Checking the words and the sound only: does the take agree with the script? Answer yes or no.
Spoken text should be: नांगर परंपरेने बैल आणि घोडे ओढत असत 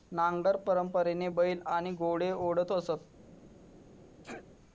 no